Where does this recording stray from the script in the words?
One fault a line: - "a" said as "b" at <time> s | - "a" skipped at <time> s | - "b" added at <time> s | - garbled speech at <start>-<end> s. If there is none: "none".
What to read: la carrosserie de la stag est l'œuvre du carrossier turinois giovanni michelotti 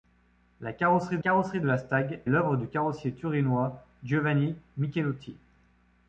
- "carrosserie" added at 1.2 s
- "est" skipped at 2.2 s